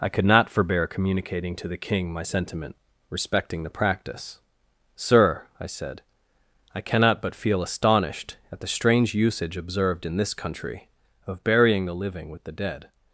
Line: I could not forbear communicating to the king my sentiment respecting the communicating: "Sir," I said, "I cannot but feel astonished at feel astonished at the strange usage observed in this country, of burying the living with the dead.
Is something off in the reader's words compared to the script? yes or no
yes